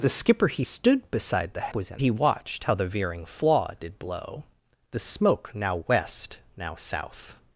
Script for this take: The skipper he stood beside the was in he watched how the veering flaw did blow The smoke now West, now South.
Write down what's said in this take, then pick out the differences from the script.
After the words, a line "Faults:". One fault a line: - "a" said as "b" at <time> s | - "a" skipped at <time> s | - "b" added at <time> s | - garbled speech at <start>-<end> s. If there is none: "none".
The skipper he stood beside the was in he watched how the veering flaw did blow The smoke now West, now South.
Faults:
none